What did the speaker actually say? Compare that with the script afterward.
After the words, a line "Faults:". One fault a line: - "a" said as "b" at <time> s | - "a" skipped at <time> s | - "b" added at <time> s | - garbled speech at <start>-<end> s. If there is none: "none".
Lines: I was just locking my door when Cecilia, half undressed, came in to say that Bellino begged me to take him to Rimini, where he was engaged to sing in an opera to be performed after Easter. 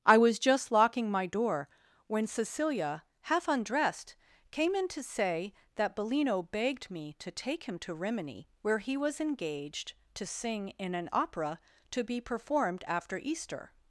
I was just locking my door when Cecilia, half undressed, came in to say that Bellino begged me to take him to Rimini, where he was engaged to sing in an opera to be performed after Easter.
Faults:
none